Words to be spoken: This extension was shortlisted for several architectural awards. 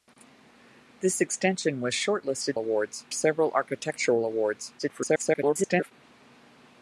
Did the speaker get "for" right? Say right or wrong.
wrong